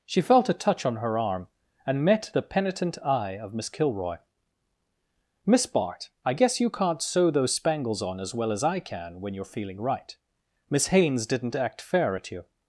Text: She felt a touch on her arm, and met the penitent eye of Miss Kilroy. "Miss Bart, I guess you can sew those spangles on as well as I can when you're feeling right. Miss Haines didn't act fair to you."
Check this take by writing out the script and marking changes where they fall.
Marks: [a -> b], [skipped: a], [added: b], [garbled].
She felt a touch on her arm, and met the penitent eye of Miss Kilroy. "Miss Bart, I guess you [can -> can't] sew those spangles on as well as I can when you're feeling right. Miss Haines didn't act fair [to -> at] you."